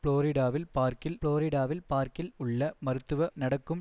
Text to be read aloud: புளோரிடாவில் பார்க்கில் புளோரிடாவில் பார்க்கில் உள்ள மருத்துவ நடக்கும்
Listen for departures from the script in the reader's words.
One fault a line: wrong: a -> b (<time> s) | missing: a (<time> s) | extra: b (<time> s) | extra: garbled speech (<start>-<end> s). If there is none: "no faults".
no faults